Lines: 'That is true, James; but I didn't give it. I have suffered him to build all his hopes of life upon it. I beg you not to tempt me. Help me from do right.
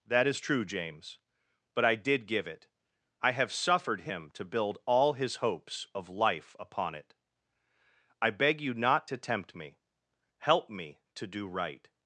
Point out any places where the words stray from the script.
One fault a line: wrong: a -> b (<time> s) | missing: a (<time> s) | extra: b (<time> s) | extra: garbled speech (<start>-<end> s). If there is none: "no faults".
wrong: didn't -> did (1.9 s)
wrong: from -> to (11.1 s)